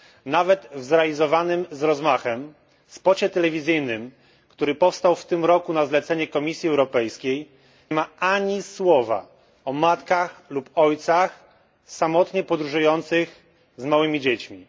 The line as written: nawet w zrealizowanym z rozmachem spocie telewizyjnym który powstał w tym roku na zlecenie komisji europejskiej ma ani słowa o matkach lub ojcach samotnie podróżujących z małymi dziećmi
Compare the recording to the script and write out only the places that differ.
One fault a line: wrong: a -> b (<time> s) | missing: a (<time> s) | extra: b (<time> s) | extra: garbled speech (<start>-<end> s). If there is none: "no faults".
no faults